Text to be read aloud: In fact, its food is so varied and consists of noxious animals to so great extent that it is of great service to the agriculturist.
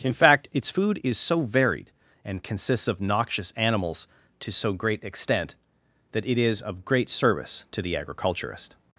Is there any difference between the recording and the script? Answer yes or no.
no